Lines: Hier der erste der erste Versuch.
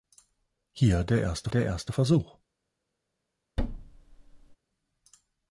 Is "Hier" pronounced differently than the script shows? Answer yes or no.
no